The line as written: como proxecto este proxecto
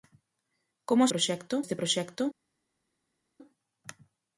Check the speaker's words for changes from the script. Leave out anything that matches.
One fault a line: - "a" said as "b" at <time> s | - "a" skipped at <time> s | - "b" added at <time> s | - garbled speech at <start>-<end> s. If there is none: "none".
none